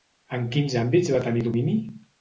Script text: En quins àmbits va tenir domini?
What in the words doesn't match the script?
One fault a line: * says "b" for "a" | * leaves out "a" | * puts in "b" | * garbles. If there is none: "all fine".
all fine